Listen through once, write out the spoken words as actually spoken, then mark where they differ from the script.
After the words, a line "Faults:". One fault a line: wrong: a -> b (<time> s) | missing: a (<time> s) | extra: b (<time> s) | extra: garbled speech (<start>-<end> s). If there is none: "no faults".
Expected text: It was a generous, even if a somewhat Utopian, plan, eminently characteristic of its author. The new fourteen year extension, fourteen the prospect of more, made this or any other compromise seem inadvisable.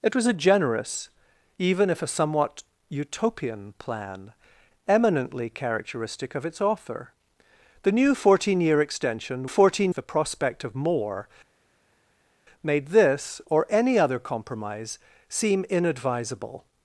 It was a generous, even if a somewhat Utopian, plan, eminently characteristic of its author. The new fourteen year extension, fourteen the prospect of more, made this or any other compromise seem inadvisable.
Faults:
no faults